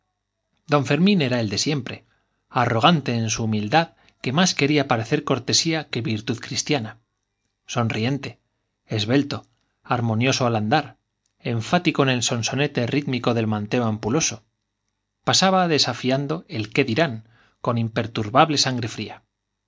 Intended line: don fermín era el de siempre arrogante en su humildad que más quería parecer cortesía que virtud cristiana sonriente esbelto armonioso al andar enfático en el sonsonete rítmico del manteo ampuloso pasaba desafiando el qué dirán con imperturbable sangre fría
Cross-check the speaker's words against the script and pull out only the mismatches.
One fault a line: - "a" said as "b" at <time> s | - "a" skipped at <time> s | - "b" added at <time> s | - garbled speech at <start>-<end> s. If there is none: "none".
none